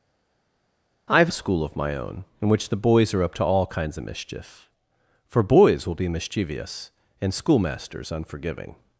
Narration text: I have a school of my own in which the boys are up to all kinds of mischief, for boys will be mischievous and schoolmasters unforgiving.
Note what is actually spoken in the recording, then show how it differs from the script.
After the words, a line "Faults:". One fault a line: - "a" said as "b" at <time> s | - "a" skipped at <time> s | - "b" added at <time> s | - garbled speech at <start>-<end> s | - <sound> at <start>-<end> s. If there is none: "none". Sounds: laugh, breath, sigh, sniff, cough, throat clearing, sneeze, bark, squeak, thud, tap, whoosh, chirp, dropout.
I have a school of my own in which the boys are up to all kinds of mischief, for boys will be mischievous and schoolmasters unforgiving.
Faults:
none